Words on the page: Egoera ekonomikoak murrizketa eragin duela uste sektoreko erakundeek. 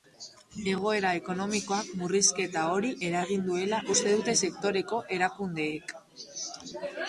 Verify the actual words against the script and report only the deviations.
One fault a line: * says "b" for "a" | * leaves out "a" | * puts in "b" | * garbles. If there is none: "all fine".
* puts in "hori"
* puts in "dute"